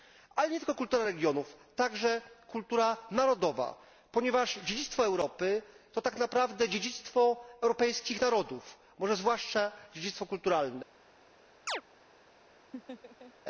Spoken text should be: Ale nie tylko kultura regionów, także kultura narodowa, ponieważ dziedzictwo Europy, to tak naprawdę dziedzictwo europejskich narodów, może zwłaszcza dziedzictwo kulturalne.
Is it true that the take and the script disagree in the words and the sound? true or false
true